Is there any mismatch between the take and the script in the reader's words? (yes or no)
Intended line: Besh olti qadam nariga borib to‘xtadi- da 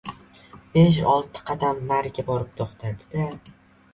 no